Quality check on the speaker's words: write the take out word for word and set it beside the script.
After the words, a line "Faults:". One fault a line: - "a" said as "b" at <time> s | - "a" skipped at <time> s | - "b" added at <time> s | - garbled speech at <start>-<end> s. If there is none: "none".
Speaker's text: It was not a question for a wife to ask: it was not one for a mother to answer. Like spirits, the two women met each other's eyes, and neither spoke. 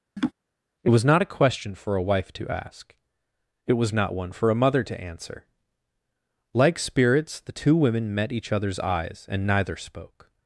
It was not a question for a wife to ask: it was not one for a mother to answer. Like spirits, the two women met each other's eyes, and neither spoke.
Faults:
none